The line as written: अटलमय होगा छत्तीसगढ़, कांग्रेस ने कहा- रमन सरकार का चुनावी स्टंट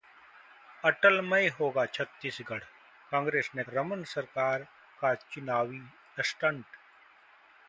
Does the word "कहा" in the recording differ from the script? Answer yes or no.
yes